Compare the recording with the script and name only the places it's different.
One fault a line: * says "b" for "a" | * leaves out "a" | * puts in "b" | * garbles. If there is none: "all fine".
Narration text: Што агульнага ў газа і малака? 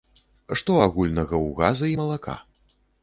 all fine